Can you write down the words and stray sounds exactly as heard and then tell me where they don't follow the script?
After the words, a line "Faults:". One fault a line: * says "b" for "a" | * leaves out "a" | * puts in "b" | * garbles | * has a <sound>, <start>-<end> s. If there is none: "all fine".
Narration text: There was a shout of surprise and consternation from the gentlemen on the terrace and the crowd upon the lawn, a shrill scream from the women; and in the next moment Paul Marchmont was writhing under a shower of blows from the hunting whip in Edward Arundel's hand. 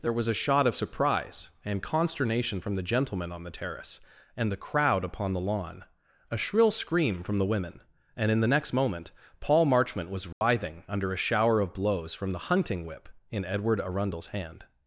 There was a shot of surprise and consternation from the gentlemen on the terrace and the crowd upon the lawn, a shrill scream from the women; and in the next moment Paul Marchmont was writhing under a shower of blows from the hunting whip in Edward Arundel's hand.
Faults:
* says "shot" for "shout"
* has a dropout, 10.3-10.4 s